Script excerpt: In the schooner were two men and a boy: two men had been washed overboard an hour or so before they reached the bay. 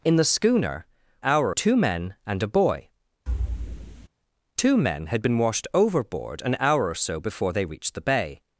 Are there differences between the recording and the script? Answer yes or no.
yes